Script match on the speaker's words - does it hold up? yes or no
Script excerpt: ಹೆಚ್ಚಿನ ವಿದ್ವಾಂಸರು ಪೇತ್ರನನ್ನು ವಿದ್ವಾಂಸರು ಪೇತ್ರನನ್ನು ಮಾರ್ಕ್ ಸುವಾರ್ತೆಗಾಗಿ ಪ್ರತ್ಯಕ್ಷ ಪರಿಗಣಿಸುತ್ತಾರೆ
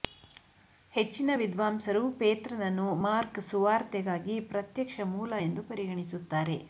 no